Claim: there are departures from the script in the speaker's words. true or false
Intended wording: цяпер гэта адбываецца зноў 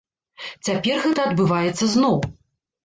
false